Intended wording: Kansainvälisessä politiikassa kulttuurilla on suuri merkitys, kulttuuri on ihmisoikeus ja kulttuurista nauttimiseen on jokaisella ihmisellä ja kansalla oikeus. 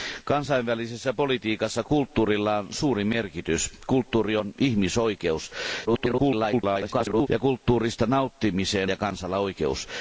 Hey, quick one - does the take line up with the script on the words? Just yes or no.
no